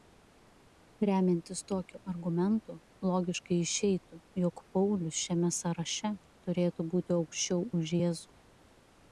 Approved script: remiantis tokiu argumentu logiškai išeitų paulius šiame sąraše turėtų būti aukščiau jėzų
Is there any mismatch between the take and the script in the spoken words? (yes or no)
yes